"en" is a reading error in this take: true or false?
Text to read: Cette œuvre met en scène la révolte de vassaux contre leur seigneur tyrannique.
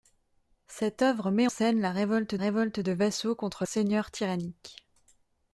true